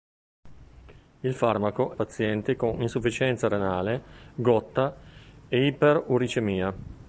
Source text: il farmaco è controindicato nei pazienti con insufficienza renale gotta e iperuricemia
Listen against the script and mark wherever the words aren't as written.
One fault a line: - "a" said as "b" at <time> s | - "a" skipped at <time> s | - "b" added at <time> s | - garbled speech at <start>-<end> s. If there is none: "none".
- "è controindicato nei" skipped at 1.9 s